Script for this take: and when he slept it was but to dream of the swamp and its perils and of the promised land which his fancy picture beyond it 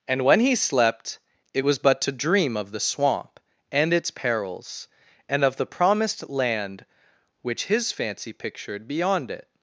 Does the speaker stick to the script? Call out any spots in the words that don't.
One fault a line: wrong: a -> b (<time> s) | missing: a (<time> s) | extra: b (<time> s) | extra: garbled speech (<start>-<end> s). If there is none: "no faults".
wrong: picture -> pictured (8.3 s)